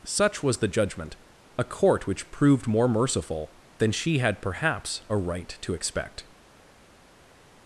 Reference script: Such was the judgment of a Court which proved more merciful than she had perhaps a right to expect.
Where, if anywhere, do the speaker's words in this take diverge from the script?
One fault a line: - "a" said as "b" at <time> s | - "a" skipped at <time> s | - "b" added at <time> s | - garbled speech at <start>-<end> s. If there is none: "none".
- "of" skipped at 1.2 s